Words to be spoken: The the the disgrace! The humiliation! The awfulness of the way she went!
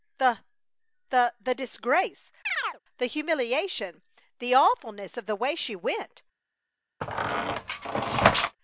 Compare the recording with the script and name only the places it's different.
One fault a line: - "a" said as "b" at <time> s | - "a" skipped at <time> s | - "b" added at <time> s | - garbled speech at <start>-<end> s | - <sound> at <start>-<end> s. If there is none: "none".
- chirp at 2.4-2.8 s
- squeak at 7.0-8.6 s